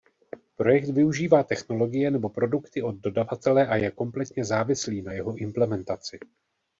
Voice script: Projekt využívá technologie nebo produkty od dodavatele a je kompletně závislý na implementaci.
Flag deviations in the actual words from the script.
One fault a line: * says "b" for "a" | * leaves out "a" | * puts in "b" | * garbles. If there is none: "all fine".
* puts in "jeho"